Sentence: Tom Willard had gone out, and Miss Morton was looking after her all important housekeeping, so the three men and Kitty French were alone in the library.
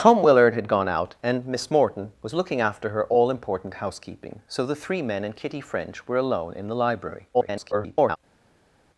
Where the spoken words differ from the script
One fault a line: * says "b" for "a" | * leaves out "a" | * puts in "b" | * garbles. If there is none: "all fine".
* garbles